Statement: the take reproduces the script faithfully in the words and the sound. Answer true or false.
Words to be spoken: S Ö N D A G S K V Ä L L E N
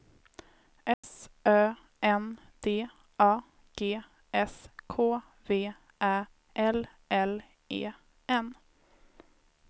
false